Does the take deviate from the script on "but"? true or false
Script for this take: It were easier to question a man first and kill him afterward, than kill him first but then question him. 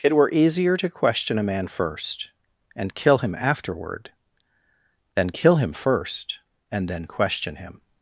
true